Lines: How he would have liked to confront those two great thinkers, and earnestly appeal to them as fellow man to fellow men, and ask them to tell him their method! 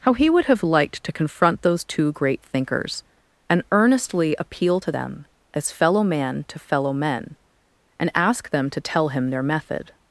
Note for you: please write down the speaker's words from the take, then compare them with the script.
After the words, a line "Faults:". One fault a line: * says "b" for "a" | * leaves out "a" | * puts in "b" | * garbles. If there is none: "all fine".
How he would have liked to confront those two great thinkers, and earnestly appeal to them as fellow man to fellow men, and ask them to tell him their method!
Faults:
all fine